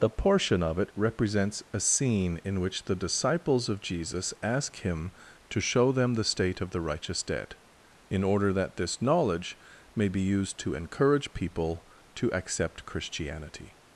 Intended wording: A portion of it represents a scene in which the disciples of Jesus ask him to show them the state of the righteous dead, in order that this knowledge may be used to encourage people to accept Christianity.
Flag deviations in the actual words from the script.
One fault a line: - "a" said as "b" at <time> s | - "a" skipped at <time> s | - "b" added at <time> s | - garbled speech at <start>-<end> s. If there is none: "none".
- "A" said as "The" at 0.0 s